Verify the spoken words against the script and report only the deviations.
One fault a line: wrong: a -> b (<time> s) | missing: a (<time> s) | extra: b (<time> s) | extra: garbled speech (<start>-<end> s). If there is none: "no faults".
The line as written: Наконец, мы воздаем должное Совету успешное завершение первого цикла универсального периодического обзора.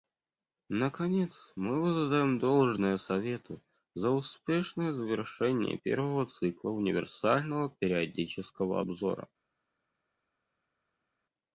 extra: за (3.9 s)